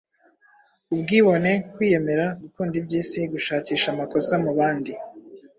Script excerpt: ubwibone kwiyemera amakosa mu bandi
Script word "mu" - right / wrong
right